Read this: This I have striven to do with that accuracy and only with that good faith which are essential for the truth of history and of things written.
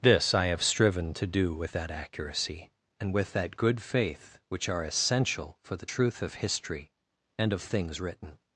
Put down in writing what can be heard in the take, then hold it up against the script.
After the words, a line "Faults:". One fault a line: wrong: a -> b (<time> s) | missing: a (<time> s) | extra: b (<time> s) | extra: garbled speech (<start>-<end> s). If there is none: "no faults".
This I have striven to do with that accuracy and with that good faith which are essential for the truth of history and of things written.
Faults:
missing: only (3.1 s)